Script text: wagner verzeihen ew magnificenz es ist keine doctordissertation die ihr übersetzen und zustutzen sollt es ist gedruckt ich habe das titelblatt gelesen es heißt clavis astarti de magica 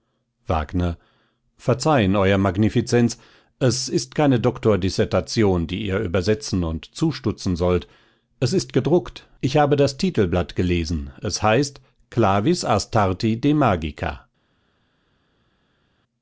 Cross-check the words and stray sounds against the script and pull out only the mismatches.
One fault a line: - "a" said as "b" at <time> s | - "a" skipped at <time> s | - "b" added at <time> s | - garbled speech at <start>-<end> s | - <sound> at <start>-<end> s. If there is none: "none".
none